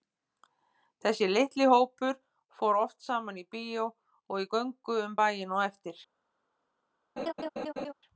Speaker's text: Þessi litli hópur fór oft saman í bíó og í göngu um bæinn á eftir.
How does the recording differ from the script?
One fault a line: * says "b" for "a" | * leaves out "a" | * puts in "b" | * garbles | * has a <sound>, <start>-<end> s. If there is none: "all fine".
* has a laugh, 7.2-7.9 s